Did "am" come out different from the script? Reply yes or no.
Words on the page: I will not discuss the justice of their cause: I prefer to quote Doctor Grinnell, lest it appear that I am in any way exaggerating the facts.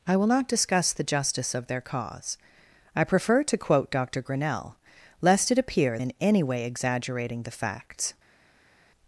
yes